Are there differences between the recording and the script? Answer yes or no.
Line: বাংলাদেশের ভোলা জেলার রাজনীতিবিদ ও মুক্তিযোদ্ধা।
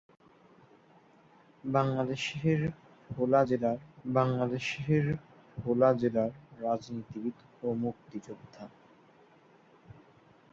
yes